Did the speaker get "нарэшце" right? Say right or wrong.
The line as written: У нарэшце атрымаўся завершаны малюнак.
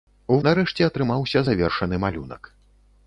right